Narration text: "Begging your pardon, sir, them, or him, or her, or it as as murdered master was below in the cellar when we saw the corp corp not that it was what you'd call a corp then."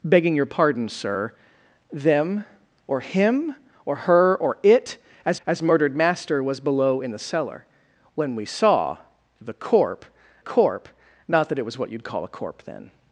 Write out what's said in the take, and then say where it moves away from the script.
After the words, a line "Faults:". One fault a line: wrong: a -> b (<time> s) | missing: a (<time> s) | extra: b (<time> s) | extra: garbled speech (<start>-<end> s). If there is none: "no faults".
"Begging your pardon, sir, them, or him, or her, or it as as murdered master was below in the cellar when we saw the corp corp not that it was what you'd call a corp then."
Faults:
no faults